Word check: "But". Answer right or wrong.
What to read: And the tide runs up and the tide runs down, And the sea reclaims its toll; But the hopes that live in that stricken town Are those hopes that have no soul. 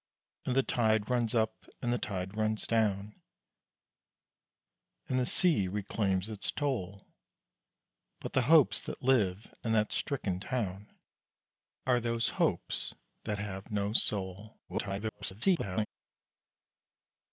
right